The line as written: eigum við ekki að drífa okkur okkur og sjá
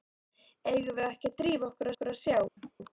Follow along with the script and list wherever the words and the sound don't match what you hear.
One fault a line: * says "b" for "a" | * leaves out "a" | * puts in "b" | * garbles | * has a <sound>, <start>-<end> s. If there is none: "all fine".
* has a laugh, 2.6-2.7 s